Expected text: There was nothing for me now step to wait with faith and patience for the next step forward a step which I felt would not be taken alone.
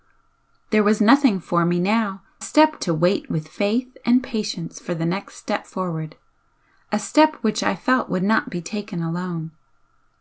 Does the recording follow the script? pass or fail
pass